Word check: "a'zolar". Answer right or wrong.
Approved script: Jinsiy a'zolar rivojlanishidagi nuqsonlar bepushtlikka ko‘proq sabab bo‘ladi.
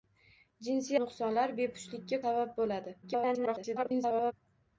wrong